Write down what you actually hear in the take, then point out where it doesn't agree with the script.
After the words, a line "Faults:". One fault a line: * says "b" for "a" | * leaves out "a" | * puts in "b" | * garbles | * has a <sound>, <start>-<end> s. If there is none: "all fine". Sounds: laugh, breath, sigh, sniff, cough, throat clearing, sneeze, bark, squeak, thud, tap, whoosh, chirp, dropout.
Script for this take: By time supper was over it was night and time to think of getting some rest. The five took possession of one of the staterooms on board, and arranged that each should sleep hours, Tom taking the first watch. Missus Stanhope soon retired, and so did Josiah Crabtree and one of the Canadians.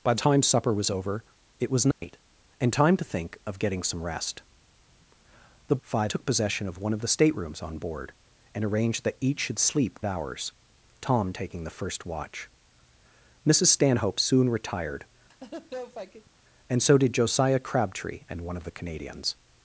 By time supper was over it was night and time to think of getting some rest. The five took possession of one of the staterooms on board, and arranged that each should sleep hours, Tom taking the first watch. Missus Stanhope soon retired, and so did Josiah Crabtree and one of the Canadians.
Faults:
* has a dropout, 1.9-2.0 s
* has a laugh, 15.3-16.3 s